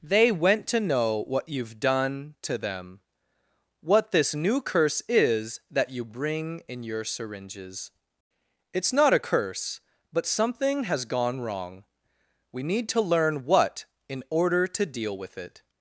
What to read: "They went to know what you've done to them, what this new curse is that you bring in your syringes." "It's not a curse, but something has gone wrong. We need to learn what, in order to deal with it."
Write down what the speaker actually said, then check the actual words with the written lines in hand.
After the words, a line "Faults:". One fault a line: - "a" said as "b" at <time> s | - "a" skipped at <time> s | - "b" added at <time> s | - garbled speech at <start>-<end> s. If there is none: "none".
"They went to know what you've done to them, what this new curse is that you bring in your syringes." "It's not a curse, but something has gone wrong. We need to learn what, in order to deal with it."
Faults:
none